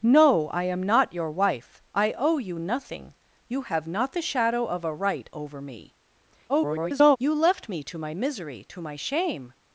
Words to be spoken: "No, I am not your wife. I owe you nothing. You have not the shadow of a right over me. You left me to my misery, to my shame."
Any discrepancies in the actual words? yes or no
yes